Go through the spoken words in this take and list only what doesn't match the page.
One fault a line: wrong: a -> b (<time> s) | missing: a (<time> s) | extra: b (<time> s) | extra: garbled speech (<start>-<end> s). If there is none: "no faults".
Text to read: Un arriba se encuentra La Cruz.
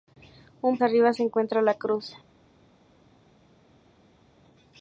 no faults